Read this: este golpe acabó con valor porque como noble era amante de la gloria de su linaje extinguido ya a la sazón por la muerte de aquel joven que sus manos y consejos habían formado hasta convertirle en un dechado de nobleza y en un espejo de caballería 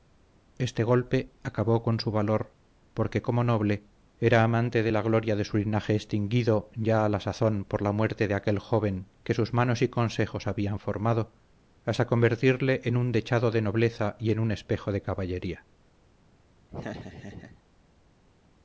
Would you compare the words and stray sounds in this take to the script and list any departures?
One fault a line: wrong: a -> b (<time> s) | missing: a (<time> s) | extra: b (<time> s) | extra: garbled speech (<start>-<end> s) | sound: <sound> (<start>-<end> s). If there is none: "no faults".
extra: su (2.0 s)
sound: laugh (16.7-17.6 s)